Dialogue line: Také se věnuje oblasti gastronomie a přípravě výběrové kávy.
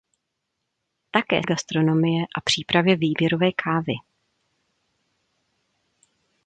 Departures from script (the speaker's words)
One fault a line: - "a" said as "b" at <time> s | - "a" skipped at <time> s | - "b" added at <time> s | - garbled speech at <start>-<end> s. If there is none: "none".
- "se věnuje oblasti" skipped at 1.4 s